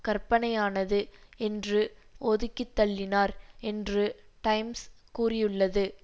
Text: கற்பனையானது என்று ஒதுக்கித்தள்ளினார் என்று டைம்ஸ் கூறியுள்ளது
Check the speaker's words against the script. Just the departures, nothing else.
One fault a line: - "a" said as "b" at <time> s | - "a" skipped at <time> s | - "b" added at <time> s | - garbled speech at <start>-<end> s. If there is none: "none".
none